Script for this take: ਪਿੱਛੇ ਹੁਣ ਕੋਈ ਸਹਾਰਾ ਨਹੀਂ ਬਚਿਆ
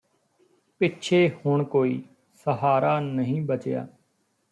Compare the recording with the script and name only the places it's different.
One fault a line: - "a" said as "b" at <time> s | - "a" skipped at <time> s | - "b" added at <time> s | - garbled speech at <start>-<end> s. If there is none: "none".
none